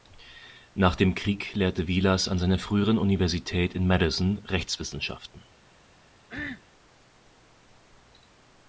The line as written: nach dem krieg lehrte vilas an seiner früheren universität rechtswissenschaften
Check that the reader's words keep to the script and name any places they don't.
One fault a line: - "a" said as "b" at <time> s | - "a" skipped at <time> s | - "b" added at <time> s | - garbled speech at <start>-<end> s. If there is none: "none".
- "in madison" added at 3.7 s